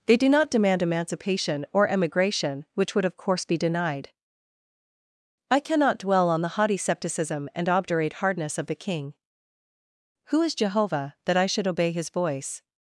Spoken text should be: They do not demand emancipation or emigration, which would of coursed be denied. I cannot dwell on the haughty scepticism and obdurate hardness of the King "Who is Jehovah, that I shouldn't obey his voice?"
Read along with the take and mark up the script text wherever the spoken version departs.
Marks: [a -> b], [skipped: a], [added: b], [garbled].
They do not demand emancipation or emigration, which would of [coursed -> course] be denied. I cannot dwell on the haughty scepticism and obdurate hardness of the King "Who is Jehovah, that I [shouldn't -> should] obey his voice?"